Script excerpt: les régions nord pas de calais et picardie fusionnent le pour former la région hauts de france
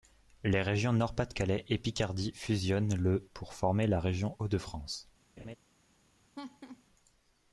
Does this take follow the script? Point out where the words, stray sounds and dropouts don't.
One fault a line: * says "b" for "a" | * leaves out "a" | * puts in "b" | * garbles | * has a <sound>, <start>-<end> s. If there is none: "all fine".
* has a laugh, 5.4-5.6 s
* has a laugh, 6.3-6.8 s